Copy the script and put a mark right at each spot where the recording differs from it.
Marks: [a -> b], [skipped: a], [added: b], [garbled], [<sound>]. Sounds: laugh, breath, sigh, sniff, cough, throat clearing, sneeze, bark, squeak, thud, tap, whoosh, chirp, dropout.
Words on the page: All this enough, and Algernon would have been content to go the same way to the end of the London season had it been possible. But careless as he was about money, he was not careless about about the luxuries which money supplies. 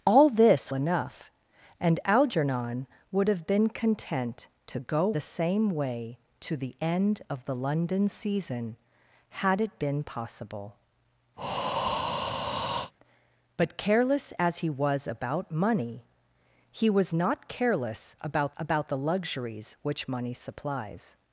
All this enough, and Algernon would have been content to go the same way to the end of the London season had it been possible. [breath] But careless as he was about money, he was not careless about about the luxuries which money supplies.